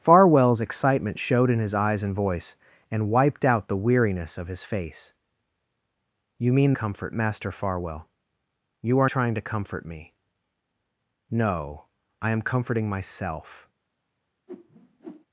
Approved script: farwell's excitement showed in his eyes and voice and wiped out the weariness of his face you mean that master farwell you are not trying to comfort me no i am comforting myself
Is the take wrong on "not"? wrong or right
wrong